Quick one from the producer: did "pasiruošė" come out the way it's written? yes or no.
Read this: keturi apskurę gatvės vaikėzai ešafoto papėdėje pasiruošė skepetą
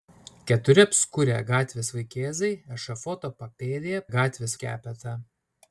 no